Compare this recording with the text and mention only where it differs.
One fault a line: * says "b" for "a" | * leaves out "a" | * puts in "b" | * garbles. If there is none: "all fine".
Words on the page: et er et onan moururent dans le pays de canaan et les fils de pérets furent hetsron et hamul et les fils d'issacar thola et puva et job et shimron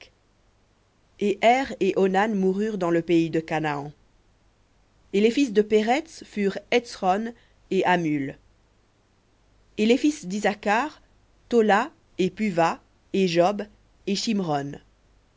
all fine